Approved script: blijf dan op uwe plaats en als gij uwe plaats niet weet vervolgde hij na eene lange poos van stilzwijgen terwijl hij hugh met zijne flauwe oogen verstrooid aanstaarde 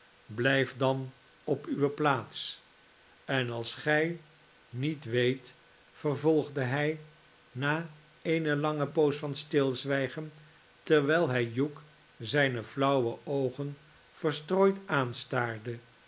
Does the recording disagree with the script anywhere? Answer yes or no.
yes